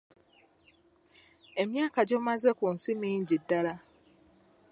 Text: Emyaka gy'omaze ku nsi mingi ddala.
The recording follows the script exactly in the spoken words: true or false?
true